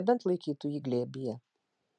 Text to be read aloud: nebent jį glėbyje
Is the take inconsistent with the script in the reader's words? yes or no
yes